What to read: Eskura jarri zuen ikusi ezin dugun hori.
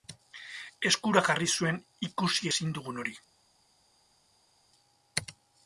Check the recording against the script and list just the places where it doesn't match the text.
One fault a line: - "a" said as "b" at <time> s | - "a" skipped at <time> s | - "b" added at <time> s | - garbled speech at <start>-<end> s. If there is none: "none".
none